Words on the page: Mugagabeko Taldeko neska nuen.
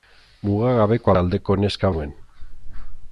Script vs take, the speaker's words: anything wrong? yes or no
no